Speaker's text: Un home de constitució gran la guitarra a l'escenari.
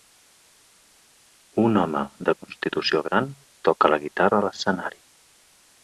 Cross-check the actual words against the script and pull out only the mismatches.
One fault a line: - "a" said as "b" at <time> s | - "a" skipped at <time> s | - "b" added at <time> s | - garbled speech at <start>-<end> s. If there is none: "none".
- "toca" added at 3.7 s